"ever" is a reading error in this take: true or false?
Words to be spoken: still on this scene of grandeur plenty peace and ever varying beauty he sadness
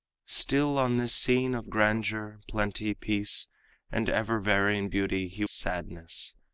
false